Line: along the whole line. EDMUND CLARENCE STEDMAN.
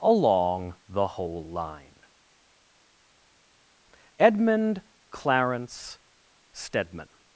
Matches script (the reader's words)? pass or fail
pass